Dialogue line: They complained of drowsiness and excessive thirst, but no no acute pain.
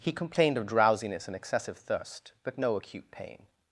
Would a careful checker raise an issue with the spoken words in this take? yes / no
yes